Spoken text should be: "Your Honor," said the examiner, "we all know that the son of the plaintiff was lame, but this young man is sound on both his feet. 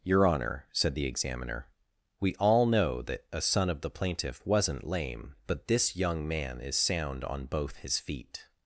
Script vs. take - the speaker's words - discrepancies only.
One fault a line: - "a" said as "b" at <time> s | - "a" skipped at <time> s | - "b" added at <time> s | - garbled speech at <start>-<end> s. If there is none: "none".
- "the" said as "a" at 3.3 s
- "was" said as "wasn't" at 4.5 s